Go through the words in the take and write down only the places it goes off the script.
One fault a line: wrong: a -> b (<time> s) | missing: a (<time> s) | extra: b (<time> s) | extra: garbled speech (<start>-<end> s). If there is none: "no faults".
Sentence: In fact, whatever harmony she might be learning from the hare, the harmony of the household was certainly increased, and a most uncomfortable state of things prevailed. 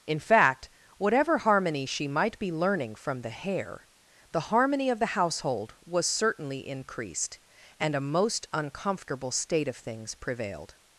no faults